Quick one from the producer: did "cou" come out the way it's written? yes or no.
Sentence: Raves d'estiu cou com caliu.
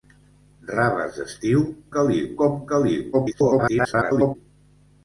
no